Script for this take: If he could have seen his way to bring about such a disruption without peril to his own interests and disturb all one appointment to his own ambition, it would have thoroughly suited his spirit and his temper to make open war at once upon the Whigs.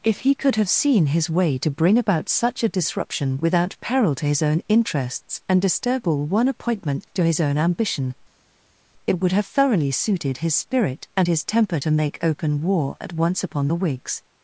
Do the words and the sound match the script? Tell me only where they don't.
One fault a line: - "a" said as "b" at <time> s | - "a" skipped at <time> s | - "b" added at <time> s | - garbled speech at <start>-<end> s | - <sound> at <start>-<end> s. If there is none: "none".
none